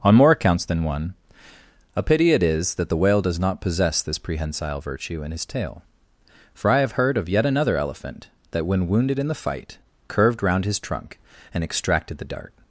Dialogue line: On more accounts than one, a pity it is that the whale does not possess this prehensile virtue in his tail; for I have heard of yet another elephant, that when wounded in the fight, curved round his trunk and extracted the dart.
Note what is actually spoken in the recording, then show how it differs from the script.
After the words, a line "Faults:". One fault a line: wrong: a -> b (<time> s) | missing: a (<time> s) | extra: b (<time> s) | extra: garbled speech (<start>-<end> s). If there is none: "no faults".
On more accounts than one, a pity it is that the whale does not possess this prehensile virtue in his tail; for I have heard of yet another elephant, that when wounded in the fight, curved round his trunk and extracted the dart.
Faults:
no faults